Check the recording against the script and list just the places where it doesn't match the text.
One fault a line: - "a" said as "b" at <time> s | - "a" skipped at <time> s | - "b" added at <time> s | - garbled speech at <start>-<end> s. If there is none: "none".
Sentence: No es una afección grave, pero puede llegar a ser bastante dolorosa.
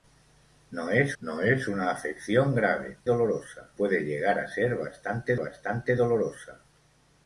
- "no es" added at 1.2 s
- "pero" said as "dolorosa" at 3.0 s
- "bastante" added at 5.3 s